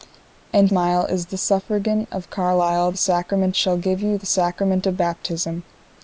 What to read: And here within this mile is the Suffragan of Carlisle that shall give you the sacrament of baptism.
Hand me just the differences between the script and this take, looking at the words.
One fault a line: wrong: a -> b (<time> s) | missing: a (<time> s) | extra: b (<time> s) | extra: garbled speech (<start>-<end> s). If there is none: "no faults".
missing: here within this (0.7 s)
wrong: that -> sacrament (2.9 s)